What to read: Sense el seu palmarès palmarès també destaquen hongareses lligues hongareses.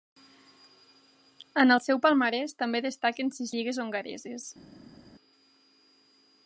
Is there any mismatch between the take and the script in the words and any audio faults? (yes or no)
yes